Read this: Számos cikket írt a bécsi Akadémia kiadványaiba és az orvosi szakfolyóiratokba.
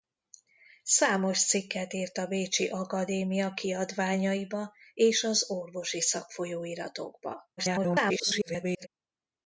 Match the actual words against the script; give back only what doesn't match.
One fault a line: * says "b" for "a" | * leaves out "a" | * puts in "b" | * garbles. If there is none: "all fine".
* garbles